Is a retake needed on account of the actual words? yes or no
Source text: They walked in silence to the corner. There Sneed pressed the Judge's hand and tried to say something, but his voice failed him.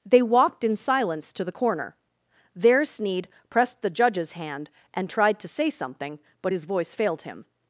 no